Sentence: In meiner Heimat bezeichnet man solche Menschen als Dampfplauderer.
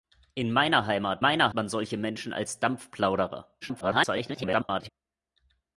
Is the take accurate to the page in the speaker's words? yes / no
no